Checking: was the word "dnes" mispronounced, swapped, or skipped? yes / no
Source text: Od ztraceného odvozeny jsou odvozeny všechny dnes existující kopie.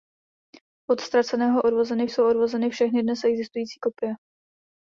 no